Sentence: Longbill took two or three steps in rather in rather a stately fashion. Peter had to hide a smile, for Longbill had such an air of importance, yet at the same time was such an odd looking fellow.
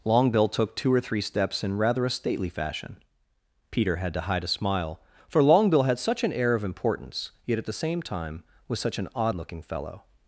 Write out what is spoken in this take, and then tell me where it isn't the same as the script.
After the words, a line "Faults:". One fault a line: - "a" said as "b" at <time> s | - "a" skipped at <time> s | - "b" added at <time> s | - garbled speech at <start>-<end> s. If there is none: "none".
Longbill took two or three steps in rather a stately fashion. Peter had to hide a smile, for Longbill had such an air of importance, yet at the same time was such an odd looking fellow.
Faults:
- "in rather" skipped at 2.0 s